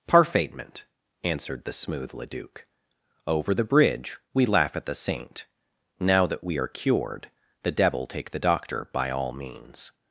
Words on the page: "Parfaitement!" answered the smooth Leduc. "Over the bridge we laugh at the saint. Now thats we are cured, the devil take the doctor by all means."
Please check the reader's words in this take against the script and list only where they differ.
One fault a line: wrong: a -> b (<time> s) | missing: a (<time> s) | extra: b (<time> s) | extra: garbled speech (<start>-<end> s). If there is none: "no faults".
wrong: thats -> that (6.3 s)